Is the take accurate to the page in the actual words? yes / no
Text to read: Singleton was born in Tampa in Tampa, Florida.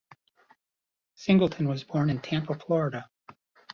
no